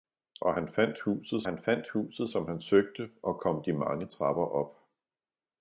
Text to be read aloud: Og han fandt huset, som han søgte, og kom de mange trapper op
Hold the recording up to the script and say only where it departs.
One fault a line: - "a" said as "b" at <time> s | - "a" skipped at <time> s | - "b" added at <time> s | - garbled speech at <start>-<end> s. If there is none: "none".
- "han fandt huset" added at 1.4 s